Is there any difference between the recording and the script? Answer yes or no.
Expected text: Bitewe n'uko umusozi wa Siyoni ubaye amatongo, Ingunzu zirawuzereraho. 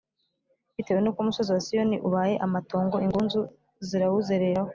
no